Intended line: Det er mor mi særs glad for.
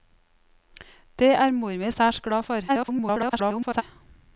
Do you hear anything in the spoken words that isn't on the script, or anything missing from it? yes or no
yes